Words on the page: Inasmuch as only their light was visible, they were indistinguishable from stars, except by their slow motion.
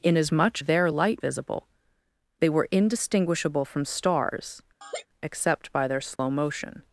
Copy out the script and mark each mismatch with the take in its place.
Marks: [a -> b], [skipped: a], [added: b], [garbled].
Inasmuch [skipped: as only] their light [skipped: was] visible, they were indistinguishable from stars, except by their slow motion.